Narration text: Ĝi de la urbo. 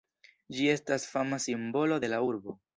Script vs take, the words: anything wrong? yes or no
yes